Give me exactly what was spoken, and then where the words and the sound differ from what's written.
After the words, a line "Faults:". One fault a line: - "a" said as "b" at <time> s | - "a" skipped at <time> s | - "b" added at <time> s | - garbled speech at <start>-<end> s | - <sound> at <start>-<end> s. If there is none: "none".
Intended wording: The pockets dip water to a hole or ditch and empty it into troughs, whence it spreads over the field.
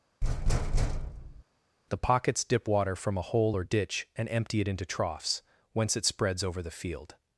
The pockets dip water from a hole or ditch and empty it into troughs, whence it spreads over the field.
Faults:
- thud at 0.2-1.4 s
- "to" said as "from" at 3.0 s